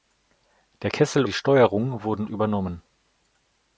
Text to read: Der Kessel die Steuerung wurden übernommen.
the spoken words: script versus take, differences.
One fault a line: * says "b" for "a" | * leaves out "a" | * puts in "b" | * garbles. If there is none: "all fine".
all fine